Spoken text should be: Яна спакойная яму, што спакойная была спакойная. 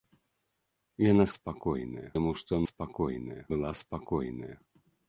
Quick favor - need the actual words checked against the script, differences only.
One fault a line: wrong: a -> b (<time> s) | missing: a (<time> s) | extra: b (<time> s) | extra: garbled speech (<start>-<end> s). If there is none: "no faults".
no faults